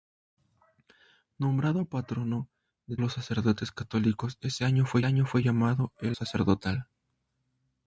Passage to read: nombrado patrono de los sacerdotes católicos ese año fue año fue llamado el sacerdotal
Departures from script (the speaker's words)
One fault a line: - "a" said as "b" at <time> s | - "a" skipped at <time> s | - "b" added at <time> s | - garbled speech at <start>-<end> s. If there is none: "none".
none